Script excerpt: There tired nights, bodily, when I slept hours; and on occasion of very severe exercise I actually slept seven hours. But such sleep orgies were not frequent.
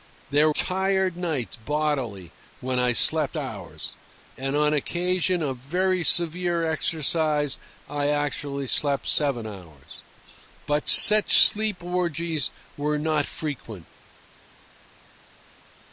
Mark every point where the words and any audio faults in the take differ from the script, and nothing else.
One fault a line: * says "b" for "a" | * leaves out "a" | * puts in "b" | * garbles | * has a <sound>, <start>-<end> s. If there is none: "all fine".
all fine